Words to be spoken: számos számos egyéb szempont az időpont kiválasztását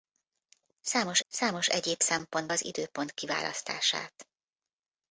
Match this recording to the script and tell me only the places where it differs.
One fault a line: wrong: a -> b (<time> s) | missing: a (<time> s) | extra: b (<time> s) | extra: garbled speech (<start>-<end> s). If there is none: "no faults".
no faults